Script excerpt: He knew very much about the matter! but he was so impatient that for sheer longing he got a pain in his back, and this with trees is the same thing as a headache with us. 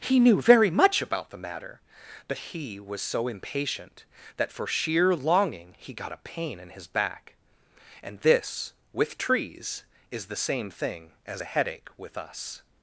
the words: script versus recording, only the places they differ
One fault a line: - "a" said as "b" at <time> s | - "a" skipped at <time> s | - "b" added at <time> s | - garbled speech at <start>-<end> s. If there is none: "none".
none